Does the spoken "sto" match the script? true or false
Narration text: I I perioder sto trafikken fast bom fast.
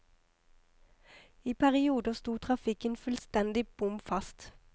true